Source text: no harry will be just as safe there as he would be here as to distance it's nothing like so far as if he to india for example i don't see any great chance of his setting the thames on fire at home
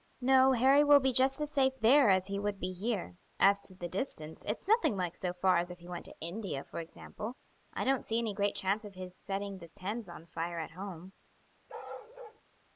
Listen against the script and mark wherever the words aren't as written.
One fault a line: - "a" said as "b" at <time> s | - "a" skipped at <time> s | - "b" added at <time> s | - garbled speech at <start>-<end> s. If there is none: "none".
- "the" added at 3.8 s
- "went" added at 5.9 s